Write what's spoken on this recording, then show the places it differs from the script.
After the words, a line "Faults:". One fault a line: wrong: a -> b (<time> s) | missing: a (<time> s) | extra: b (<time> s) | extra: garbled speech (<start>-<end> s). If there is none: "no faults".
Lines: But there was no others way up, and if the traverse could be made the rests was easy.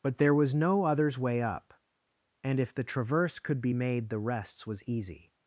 But there was no others way up, and if the traverse could be made the rests was easy.
Faults:
no faults